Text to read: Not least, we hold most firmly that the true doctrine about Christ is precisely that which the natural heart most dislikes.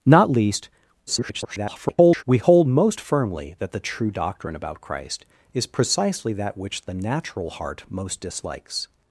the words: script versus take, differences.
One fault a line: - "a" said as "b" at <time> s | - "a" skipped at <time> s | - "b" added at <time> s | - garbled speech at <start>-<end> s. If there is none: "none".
- garbled speech at 1.1-2.2 s